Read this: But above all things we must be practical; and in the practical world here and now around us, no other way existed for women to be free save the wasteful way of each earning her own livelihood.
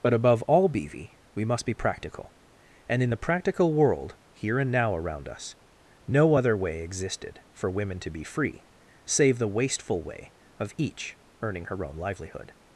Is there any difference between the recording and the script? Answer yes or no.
yes